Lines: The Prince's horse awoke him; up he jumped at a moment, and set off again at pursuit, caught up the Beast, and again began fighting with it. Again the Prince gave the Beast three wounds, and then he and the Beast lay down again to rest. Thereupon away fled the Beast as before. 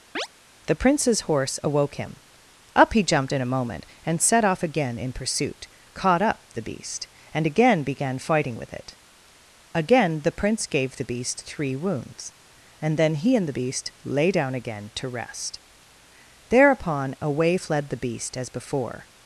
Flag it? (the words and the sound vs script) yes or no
yes